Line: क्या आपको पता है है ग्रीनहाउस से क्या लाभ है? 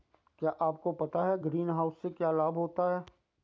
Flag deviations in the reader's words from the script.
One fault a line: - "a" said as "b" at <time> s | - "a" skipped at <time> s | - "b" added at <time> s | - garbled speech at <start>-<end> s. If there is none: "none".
- "है" skipped at 1.4 s
- "होता" added at 2.6 s